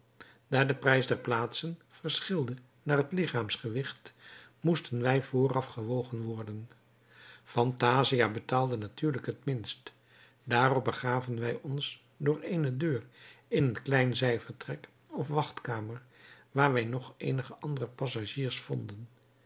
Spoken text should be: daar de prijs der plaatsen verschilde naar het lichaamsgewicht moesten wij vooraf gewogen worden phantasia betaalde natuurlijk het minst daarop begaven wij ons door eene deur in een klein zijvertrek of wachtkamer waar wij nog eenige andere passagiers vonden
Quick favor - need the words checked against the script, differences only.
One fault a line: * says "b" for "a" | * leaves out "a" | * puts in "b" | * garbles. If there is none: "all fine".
all fine